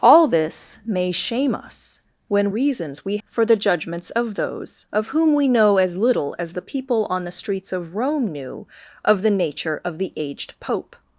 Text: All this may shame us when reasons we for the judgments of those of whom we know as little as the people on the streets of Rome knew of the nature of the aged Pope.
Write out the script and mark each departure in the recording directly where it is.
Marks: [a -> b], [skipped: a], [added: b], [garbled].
All this may shame us when reasons we for the judgments of those of whom we know as little as the people on the streets of Rome knew of the nature of the aged Pope.